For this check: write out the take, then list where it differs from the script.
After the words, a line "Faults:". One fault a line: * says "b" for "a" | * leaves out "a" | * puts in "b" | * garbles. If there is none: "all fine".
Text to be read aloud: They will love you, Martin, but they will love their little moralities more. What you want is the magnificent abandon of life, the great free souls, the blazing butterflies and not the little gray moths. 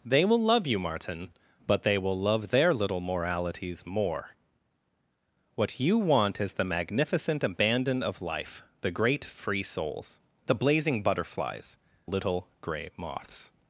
They will love you, Martin, but they will love their little moralities more. What you want is the magnificent abandon of life, the great free souls, the blazing butterflies little gray moths.
Faults:
* leaves out "and not the"